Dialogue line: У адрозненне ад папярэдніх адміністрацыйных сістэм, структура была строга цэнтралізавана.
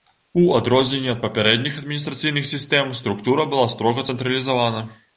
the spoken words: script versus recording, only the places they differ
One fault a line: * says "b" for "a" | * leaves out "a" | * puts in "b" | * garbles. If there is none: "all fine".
all fine